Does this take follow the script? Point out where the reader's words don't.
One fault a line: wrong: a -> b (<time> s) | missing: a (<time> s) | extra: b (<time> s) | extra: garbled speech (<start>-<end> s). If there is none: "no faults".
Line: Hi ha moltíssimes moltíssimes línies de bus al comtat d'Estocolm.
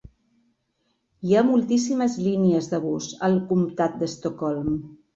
missing: moltíssimes (2.2 s)